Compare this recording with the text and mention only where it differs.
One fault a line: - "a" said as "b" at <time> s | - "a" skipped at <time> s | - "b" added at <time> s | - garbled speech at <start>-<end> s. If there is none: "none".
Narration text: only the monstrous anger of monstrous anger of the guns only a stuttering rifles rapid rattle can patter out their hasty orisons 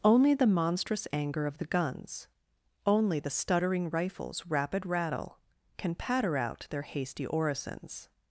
- "monstrous anger of" skipped at 1.6 s
- "a" said as "the" at 3.2 s